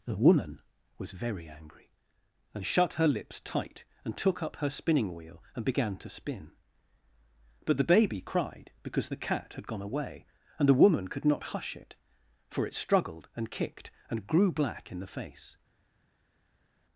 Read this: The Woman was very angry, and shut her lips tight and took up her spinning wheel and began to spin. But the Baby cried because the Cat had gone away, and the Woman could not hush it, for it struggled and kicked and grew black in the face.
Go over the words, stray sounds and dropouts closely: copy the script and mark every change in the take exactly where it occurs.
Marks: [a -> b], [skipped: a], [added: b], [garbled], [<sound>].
The Woman was very angry, and shut her lips tight and took up her spinning wheel and began to spin. But the Baby cried because the Cat had gone away, and the Woman could not hush it, for it struggled and kicked and grew black in the face.